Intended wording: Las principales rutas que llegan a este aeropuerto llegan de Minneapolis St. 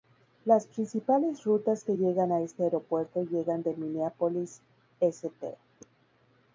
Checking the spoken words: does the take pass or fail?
pass